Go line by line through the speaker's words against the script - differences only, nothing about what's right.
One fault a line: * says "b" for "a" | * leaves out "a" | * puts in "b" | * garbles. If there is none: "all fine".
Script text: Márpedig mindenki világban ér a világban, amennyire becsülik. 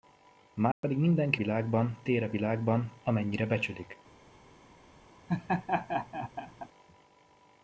all fine